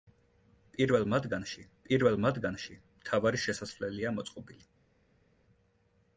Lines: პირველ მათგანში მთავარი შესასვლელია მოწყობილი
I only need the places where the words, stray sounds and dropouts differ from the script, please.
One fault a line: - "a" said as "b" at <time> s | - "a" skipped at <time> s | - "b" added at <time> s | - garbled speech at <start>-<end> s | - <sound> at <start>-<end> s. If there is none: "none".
- "პირველ მათგანში" added at 1.9 s